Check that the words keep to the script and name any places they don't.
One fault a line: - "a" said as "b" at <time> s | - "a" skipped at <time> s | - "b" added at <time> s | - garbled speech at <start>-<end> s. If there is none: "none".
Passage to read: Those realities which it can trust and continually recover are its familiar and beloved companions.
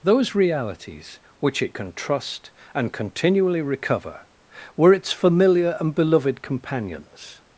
- "are" said as "were" at 4.8 s